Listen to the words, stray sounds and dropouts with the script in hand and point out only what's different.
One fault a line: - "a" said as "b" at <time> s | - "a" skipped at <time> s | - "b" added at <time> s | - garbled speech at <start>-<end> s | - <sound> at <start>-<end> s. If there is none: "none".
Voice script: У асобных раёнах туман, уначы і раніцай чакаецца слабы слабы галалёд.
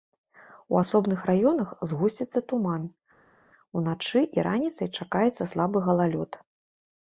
- "згусціцца" added at 1.9 s
- "слабы" skipped at 5.8 s